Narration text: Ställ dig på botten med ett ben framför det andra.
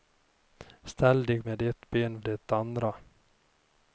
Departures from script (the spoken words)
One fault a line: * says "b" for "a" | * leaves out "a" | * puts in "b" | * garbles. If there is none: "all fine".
* leaves out "på botten"
* leaves out "framför"